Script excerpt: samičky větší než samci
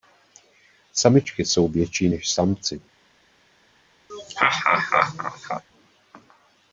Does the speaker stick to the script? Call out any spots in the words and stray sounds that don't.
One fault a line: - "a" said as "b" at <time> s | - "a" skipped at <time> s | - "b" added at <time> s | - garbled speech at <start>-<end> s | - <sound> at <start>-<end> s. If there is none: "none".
- "jsou" added at 1.4 s
- laugh at 4.1-5.6 s